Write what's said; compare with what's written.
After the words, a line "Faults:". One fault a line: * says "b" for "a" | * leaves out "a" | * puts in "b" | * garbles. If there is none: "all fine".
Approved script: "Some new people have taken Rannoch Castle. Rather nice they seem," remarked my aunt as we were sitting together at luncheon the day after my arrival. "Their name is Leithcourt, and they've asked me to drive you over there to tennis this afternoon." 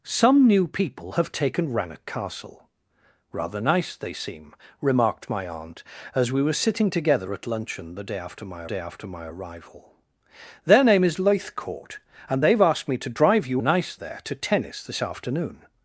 "Some new people have taken Rannoch Castle. Rather nice they seem," remarked my aunt as we were sitting together at luncheon the day after my day after my arrival. "Their name is Leithcourt, and they've asked me to drive you nice there to tennis this afternoon."
Faults:
* puts in "day after my"
* says "nice" for "over"